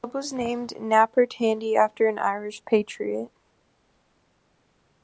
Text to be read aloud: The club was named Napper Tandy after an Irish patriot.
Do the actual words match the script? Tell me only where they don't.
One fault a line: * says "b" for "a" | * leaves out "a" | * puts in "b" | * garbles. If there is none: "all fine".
all fine